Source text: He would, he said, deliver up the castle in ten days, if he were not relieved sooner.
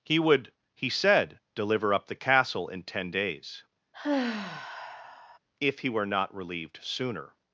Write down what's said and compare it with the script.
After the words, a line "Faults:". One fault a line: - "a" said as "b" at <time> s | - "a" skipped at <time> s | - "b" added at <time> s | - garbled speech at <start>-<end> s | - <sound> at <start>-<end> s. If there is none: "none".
He would, he said, deliver up the castle in ten days, if he were not relieved sooner.
Faults:
- sigh at 3.9-5.4 s